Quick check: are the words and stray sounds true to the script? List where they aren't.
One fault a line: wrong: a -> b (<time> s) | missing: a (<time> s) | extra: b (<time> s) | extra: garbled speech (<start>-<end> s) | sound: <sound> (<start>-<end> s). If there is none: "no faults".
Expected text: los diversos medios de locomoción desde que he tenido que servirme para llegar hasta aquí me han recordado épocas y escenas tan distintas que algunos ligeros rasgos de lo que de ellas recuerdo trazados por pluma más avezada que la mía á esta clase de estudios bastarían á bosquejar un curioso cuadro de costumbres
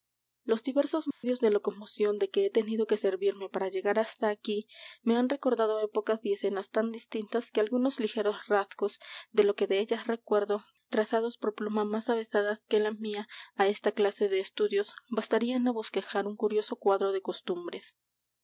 sound: dropout (1.1-1.2 s)
wrong: desde -> de (2.2 s)